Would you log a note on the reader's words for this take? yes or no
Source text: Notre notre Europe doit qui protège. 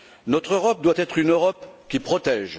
yes